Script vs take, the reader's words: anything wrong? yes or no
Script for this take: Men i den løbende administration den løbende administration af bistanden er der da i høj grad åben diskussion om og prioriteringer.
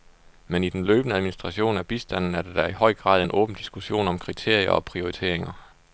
yes